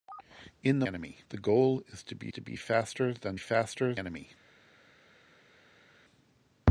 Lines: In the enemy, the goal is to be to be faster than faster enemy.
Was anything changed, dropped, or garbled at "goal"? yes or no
no